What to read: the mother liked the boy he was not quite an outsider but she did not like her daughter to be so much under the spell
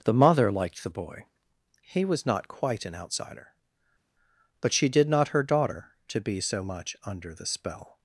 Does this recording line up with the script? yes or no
no